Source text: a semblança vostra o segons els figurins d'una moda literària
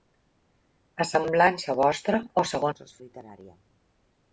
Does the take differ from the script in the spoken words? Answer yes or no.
yes